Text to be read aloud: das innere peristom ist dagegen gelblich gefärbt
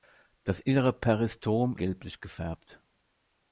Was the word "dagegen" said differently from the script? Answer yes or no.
yes